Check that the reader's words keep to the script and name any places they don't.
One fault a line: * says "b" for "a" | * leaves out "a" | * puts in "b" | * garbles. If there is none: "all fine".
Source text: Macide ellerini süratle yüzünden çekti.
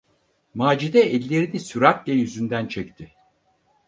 all fine